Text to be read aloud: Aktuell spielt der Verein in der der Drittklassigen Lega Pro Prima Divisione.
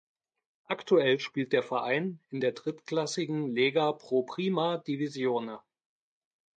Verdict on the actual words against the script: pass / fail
fail